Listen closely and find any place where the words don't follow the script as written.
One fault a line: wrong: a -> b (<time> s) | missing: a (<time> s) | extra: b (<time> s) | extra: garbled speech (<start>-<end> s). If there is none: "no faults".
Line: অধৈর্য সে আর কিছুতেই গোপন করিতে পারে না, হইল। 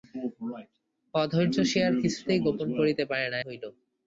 no faults